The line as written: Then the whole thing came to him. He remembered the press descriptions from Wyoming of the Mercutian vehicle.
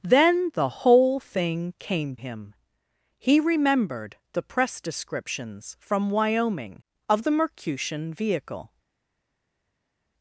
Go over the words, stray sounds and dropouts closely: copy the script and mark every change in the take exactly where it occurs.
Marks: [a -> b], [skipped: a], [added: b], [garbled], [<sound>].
Then the whole thing came [skipped: to] him. He remembered the press descriptions from Wyoming of the Mercutian vehicle.